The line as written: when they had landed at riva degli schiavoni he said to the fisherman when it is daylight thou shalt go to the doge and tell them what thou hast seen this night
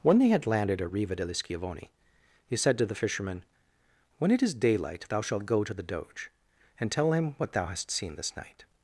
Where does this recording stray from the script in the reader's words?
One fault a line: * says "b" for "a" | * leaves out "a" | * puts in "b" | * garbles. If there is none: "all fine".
* says "him" for "them"